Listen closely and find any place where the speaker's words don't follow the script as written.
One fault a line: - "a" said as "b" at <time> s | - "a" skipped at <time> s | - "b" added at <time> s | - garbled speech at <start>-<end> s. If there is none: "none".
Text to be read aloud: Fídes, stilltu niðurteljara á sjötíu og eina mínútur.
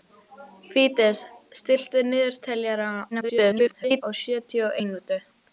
- garbled speech at 3.1-4.0 s
- "eina" skipped at 4.8 s